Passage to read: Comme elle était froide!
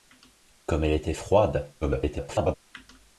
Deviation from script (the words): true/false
true